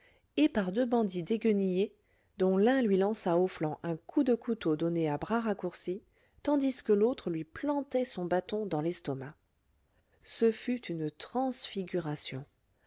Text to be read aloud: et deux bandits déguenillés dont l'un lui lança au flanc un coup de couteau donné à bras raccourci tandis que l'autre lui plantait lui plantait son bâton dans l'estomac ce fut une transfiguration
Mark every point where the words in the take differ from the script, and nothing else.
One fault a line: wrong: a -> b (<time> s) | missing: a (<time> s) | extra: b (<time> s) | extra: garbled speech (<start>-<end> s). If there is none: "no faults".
extra: par (0.5 s)
missing: lui plantait (8.0 s)